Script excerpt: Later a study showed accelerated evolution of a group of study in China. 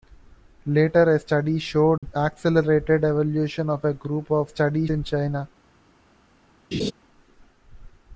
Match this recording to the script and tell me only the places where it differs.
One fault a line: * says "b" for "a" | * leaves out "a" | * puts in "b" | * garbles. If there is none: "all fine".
all fine